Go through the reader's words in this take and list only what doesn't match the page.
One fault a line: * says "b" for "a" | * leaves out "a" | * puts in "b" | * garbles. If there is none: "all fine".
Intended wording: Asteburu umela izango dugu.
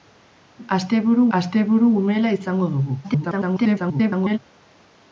* puts in "asteburu"
* garbles